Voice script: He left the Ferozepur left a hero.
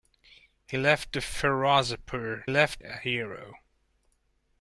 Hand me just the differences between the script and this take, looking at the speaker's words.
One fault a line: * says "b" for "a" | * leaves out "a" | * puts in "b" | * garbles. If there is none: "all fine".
all fine